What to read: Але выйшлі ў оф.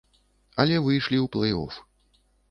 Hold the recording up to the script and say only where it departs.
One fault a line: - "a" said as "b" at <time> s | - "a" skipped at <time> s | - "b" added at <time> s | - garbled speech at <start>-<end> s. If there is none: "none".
- "плэй" added at 1.4 s